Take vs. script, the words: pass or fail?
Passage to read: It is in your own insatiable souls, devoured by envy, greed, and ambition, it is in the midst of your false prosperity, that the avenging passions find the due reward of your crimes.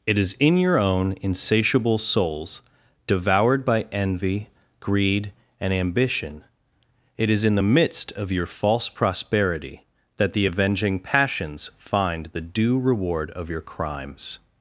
pass